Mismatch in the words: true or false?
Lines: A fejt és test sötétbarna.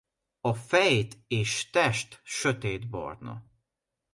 false